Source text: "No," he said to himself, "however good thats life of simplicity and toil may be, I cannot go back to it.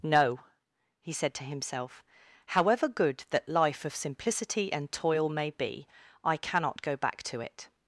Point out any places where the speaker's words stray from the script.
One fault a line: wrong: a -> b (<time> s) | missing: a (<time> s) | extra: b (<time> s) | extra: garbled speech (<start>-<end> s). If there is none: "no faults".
wrong: thats -> that (3.3 s)